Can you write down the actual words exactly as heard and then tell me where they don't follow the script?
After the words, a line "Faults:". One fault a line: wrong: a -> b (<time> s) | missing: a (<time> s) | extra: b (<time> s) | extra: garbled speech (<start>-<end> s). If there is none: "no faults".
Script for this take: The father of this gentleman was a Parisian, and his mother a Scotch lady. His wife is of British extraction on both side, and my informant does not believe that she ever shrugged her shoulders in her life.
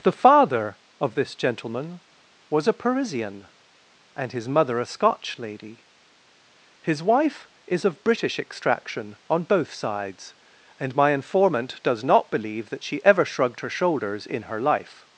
The father of this gentleman was a Parisian, and his mother a Scotch lady. His wife is of British extraction on both sides, and my informant does not believe that she ever shrugged her shoulders in her life.
Faults:
wrong: side -> sides (9.7 s)